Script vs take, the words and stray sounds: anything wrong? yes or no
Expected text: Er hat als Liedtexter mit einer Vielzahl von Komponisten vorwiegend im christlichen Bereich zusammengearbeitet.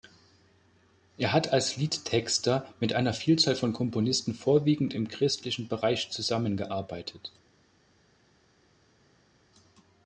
no